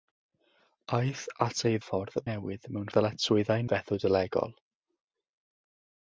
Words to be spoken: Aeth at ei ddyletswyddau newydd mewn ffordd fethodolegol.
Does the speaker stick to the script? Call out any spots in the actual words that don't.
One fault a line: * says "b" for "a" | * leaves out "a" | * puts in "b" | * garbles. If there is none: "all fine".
* says "ffordd" for "ddyletswyddau"
* says "ddyletswyddau" for "ffordd"